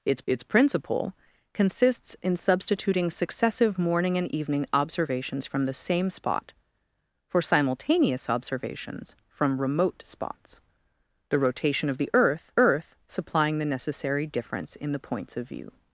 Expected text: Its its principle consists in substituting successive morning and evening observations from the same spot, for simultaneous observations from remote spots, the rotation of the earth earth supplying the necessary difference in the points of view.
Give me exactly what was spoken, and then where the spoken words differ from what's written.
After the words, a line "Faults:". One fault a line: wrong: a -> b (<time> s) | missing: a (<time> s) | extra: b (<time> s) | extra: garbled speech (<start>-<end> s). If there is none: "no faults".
Its its principle consists in substituting successive morning and evening observations from the same spot, for simultaneous observations from remote spots, the rotation of the earth earth supplying the necessary difference in the points of view.
Faults:
no faults